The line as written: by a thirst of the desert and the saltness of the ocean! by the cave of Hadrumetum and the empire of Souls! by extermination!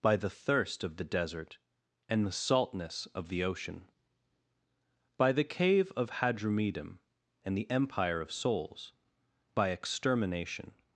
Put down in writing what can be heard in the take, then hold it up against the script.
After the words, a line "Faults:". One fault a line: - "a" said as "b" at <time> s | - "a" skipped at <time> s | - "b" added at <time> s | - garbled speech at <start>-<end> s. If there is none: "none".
by the thirst of the desert and the saltness of the ocean! by the cave of Hadrumetum and the empire of Souls! by extermination!
Faults:
- "a" said as "the" at 0.1 s